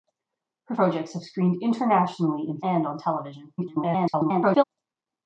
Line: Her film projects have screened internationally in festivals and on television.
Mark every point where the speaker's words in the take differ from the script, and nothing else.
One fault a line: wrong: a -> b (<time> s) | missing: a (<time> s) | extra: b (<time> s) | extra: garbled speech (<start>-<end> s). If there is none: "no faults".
missing: film (0.8 s)
missing: festivals (2.6 s)
extra: garbled speech (3.6-4.6 s)